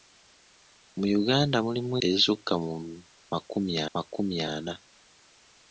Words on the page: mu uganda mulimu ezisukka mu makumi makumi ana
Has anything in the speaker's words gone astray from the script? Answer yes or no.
no